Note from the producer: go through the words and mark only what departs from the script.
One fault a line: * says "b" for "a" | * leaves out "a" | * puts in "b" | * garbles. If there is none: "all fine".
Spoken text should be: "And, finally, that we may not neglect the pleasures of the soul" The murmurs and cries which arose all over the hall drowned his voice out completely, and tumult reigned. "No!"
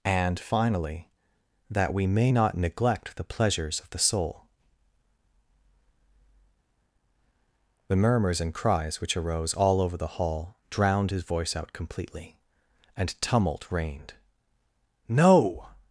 all fine